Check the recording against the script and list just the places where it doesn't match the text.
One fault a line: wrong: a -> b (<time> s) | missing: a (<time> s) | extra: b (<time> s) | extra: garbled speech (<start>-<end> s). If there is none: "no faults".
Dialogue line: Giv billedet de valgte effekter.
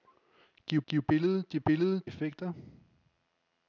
extra: giv (0.9 s)
wrong: valgte -> billedet (1.6 s)